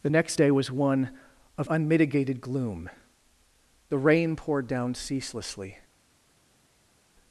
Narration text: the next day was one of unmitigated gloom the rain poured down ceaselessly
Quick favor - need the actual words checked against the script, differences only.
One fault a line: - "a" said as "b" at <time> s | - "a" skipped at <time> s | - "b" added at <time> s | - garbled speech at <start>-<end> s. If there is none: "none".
none